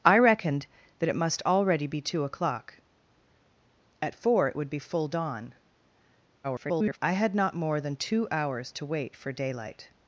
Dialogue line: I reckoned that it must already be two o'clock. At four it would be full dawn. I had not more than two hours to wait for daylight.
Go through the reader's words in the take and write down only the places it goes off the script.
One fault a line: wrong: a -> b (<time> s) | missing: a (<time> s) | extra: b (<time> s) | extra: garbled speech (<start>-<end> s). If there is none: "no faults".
extra: garbled speech (6.4-7.0 s)